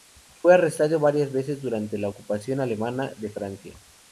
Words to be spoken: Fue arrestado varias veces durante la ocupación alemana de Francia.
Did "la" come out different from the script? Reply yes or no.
no